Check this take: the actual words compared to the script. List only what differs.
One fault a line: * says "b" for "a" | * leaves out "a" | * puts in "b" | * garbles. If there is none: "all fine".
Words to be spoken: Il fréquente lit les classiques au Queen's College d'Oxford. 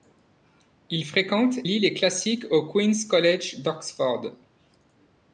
all fine